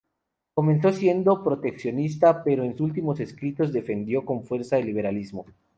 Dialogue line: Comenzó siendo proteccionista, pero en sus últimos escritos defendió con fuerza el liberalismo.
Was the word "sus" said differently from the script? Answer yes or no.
yes